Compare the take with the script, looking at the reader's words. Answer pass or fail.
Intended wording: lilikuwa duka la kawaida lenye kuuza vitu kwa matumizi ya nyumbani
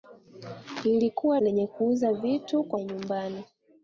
fail